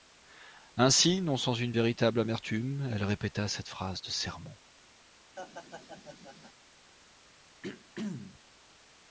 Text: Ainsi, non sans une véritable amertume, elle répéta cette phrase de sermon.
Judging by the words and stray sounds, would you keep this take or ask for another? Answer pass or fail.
fail